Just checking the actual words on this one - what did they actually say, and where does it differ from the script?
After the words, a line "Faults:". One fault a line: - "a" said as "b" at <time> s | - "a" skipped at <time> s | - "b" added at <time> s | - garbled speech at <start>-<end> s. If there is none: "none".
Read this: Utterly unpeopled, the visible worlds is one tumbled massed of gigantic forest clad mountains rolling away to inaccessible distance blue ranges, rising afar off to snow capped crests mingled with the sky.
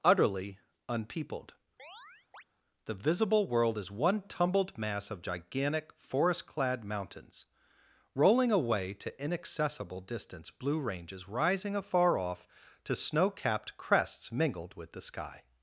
Utterly unpeopled, the visible world is one tumbled mass of gigantic forest clad mountains rolling away to inaccessible distance blue ranges, rising afar off to snow capped crests mingled with the sky.
Faults:
- "worlds" said as "world" at 3.5 s
- "massed" said as "mass" at 4.8 s